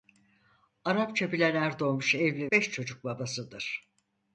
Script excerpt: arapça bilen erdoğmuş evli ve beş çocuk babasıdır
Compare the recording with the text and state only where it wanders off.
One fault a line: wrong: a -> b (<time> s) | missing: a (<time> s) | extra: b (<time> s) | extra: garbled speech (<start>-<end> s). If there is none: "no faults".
missing: ve (2.5 s)